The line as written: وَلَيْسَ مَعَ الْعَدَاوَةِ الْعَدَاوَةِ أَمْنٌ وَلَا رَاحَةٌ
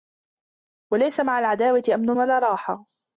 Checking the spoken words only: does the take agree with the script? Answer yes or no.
no